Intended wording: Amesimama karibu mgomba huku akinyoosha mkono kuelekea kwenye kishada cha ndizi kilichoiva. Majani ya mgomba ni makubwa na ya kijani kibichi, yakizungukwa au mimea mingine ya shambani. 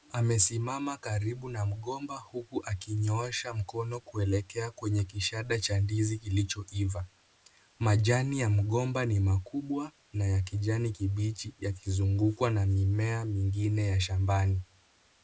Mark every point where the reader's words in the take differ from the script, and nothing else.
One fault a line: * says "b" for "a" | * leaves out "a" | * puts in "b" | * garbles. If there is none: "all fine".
* puts in "na"
* says "na" for "au"